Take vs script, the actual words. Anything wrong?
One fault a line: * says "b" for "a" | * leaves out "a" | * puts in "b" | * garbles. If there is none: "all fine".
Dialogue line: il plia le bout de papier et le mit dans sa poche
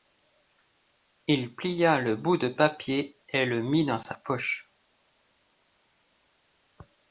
all fine